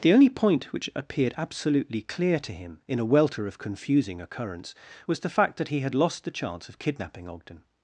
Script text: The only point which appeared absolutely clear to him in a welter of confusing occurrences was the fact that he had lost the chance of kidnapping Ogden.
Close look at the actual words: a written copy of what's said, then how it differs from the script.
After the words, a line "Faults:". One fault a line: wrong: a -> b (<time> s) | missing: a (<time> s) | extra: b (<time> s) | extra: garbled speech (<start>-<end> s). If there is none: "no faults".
The only point which appeared absolutely clear to him in a welter of confusing occurrence was the fact that he had lost the chance of kidnapping Ogden.
Faults:
wrong: occurrences -> occurrence (4.2 s)